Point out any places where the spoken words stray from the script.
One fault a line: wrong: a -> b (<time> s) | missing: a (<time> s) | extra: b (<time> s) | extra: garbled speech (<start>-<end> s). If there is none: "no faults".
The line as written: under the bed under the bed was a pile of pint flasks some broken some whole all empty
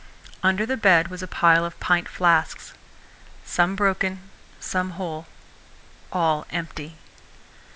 missing: under the bed (1.1 s)